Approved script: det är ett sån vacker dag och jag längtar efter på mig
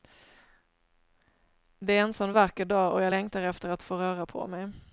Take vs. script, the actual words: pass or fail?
fail